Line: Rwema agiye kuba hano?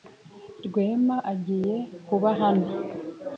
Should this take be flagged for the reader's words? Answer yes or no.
no